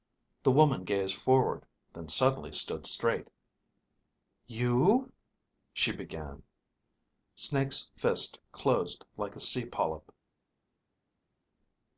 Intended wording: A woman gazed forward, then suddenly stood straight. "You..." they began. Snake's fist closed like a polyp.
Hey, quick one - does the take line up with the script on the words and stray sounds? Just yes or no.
no